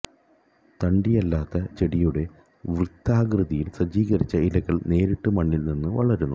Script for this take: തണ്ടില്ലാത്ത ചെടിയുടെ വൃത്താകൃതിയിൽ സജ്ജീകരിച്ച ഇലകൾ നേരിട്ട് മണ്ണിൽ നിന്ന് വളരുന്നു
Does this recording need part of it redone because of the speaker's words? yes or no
no